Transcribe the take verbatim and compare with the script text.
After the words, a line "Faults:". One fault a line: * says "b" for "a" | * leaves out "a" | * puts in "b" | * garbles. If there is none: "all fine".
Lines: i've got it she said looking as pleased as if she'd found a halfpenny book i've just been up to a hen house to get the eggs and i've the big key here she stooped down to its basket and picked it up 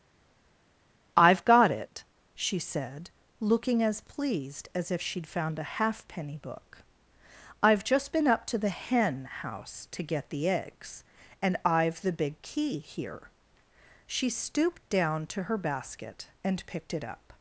i've got it she said looking as pleased as if she'd found a halfpenny book i've just been up to the hen house to get the eggs and i've the big key here she stooped down to her basket and picked it up
Faults:
* says "the" for "a"
* says "her" for "its"